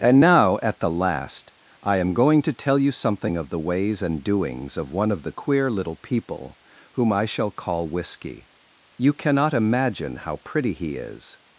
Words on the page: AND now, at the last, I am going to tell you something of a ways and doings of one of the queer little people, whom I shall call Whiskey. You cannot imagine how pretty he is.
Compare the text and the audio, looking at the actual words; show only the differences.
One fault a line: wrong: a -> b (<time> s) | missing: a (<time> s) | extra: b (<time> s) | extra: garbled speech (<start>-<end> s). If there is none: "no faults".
wrong: a -> the (3.5 s)